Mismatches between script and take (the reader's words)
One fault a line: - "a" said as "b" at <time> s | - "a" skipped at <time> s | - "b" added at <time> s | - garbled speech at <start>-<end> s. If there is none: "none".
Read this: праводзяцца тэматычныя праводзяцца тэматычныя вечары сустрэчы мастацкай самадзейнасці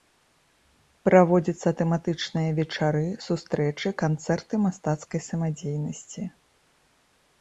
- "праводзяцца тэматычныя" skipped at 2.5 s
- "канцэрты" added at 4.0 s